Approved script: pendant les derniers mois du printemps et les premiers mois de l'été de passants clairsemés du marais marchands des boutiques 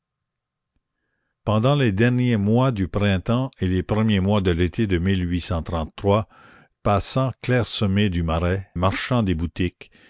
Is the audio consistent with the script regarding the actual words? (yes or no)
yes